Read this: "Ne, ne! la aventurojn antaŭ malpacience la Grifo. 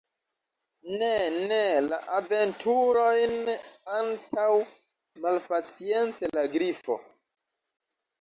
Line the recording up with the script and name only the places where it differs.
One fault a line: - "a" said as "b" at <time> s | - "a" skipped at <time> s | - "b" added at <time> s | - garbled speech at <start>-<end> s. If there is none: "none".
none